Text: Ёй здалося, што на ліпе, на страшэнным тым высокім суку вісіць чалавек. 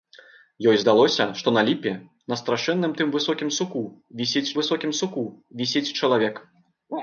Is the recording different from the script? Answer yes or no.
yes